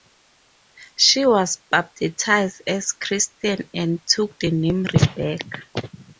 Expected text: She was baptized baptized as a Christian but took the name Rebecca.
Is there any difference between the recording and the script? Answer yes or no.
yes